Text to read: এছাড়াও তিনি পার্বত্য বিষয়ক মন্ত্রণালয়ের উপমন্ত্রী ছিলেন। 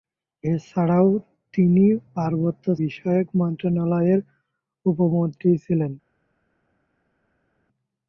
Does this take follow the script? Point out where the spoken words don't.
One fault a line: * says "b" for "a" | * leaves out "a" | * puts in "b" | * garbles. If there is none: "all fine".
all fine